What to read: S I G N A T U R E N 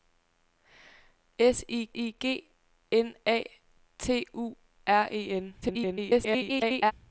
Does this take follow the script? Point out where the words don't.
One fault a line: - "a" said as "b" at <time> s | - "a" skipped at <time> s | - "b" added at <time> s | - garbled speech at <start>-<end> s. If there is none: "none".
- "I" added at 1.9 s
- garbled speech at 5.6-6.9 s